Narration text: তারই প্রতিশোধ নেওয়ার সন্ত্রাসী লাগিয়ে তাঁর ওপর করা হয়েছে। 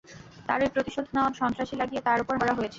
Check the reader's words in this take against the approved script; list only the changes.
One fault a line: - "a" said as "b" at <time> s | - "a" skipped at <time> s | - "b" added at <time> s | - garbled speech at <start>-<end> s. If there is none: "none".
none